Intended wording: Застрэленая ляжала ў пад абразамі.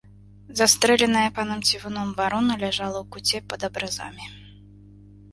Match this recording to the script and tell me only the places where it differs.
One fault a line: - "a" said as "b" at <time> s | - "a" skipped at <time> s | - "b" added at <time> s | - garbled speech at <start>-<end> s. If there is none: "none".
- "панам цівуном варона" added at 1.4 s
- "куце" added at 3.1 s